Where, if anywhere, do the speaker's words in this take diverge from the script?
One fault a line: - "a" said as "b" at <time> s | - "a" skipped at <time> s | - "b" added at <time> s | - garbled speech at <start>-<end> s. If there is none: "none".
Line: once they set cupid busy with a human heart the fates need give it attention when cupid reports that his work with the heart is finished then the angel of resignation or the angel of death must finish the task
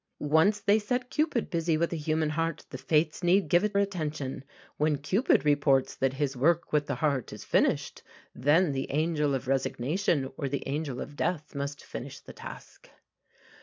none